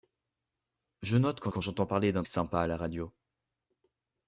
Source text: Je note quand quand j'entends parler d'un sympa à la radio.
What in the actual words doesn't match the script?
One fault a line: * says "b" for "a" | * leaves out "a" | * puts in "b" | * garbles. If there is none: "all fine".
all fine